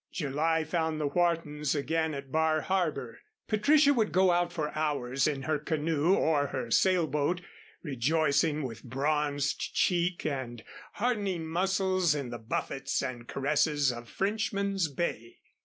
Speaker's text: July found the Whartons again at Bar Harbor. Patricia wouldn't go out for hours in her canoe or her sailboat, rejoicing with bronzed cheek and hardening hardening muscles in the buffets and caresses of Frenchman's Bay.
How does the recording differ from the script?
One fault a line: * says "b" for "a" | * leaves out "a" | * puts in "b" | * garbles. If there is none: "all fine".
* says "would" for "wouldn't"
* leaves out "hardening"